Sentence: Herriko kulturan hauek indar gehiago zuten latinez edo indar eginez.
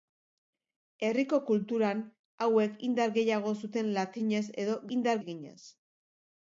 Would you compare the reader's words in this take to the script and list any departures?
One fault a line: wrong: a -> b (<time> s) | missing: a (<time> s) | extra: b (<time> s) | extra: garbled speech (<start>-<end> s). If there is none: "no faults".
no faults